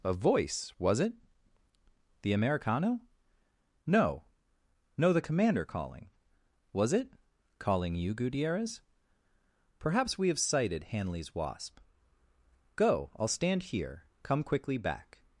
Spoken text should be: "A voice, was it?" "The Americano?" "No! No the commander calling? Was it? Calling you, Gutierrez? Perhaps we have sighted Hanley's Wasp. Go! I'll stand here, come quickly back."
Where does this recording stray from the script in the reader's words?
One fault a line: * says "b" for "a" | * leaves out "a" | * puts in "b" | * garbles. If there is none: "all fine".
all fine